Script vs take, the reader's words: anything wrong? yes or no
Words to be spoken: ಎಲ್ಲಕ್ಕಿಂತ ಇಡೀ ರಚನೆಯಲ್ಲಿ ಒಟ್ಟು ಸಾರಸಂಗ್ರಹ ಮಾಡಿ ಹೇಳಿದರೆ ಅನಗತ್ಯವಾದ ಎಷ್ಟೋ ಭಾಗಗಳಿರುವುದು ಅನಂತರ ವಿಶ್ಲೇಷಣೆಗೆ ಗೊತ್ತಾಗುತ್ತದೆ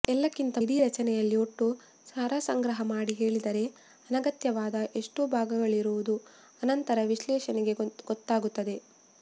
no